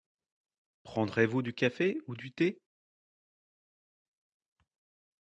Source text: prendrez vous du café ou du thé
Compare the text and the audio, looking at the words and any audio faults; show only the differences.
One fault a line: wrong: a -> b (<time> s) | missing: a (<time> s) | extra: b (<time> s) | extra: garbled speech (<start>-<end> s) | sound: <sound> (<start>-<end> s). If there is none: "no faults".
no faults